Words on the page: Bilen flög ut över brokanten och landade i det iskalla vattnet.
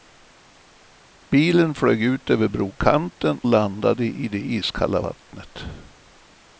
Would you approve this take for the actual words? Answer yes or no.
no